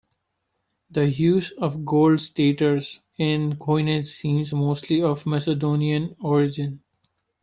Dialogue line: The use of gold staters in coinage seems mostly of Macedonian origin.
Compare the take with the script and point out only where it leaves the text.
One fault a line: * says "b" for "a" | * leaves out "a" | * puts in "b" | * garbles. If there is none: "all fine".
all fine